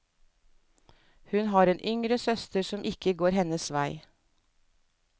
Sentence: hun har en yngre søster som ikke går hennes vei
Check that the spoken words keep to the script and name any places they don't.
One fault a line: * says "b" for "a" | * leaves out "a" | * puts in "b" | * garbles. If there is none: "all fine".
all fine